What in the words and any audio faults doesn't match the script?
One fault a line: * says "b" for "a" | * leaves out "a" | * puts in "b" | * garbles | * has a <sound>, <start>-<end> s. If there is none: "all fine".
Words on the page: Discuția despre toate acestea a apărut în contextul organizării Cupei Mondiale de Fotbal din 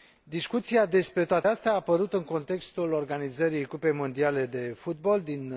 all fine